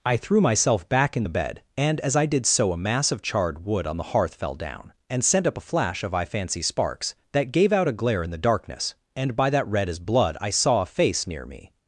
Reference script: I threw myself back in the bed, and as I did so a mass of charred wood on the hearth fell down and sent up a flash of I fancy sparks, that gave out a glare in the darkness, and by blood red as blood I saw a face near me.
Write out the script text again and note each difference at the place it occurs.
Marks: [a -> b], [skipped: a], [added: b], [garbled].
I threw myself back in the bed, and as I did so a mass of charred wood on the hearth fell down and sent up a flash of I fancy sparks, that gave out a glare in the darkness, and by [blood -> that] red as blood I saw a face near me.